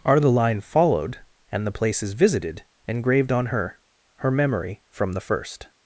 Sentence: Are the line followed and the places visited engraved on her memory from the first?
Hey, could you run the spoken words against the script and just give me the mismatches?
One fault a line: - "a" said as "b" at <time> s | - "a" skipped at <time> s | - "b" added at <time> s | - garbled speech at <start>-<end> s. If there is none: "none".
- "her" added at 4.2 s